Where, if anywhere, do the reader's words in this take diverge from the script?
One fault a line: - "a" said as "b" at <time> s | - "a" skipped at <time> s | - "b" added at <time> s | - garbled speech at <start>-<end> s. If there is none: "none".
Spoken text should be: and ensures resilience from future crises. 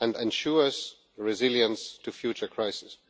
- "from" said as "to" at 2.0 s